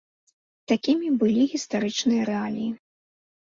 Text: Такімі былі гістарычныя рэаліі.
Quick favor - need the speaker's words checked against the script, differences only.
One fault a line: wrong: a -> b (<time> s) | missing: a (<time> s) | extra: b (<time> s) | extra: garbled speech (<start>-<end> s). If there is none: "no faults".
no faults